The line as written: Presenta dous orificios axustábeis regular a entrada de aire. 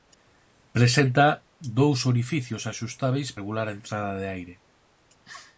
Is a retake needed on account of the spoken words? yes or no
no